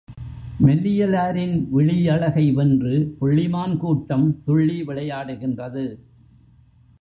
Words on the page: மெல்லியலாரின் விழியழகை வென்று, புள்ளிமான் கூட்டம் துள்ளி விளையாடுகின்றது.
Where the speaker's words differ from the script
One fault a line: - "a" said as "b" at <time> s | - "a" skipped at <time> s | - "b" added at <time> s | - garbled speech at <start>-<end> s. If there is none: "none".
none